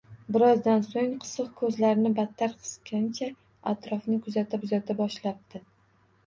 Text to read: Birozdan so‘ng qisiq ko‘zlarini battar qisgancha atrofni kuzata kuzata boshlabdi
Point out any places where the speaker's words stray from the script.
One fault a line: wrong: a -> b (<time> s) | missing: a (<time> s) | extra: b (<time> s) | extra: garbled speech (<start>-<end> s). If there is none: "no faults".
no faults